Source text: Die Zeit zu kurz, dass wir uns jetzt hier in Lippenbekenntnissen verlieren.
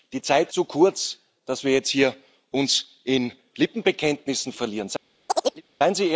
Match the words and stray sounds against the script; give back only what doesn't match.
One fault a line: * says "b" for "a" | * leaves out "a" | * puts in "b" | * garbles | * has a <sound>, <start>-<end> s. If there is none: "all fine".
* has a chirp, 5.3-5.6 s